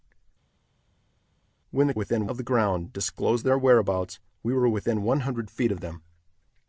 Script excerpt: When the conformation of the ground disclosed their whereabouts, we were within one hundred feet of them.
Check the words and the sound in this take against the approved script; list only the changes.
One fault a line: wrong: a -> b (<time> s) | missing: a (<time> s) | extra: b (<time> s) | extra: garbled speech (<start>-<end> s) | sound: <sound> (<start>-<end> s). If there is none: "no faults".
wrong: conformation -> within (1.9 s)